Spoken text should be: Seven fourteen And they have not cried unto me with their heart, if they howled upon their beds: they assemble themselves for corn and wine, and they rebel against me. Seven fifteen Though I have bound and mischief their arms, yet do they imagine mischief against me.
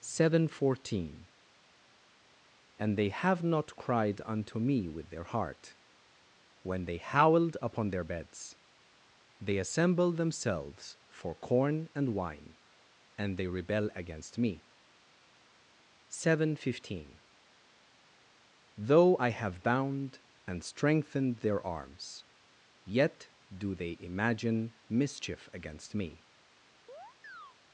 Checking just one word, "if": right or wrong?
wrong